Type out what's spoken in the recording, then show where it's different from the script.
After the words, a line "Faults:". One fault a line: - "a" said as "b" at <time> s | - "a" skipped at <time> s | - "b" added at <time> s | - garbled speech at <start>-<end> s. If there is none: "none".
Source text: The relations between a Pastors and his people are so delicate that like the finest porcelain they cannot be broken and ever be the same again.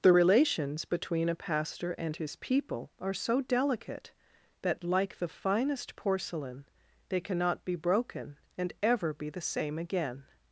The relations between a Pastor and his people are so delicate that like the finest porcelain they cannot be broken and ever be the same again.
Faults:
- "Pastors" said as "Pastor" at 1.3 s